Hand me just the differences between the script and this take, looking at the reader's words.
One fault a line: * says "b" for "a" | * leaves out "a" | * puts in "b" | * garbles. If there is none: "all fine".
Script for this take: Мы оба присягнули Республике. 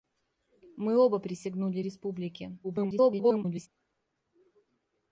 * garbles